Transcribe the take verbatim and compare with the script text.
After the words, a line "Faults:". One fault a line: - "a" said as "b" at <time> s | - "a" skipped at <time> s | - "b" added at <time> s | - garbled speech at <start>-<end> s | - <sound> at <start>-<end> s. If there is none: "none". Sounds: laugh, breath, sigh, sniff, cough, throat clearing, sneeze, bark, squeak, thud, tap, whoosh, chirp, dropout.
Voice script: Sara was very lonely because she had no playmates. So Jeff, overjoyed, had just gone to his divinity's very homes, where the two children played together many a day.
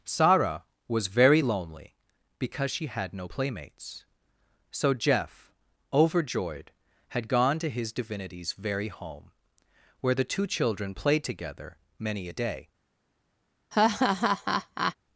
Sara was very lonely because she had no playmates. So Jeff, overjoyed, had gone to his divinity's very home, where the two children played together many a day.
Faults:
- "just" skipped at 7.3 s
- "homes" said as "home" at 8.9 s
- laugh at 13.7-14.9 s